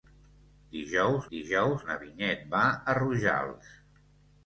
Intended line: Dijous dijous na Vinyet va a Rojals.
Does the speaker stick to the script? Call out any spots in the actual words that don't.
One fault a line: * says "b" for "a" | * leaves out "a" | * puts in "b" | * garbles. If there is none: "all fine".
all fine